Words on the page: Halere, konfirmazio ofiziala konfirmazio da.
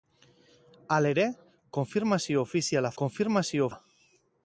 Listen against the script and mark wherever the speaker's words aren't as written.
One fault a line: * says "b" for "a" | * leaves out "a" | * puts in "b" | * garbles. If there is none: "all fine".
all fine